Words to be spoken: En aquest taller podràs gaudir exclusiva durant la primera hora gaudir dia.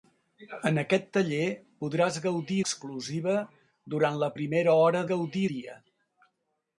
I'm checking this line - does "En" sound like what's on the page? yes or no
yes